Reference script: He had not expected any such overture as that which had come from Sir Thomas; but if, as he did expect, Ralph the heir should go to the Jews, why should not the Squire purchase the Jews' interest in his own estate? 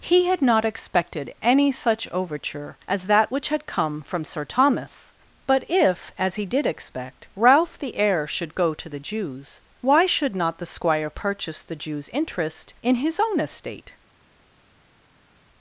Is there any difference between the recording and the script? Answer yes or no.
no